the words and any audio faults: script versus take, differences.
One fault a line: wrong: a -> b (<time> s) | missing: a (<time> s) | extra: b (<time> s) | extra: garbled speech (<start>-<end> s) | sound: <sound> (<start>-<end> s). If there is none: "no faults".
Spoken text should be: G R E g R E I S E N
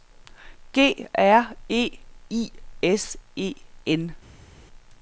missing: g R E (2.0 s)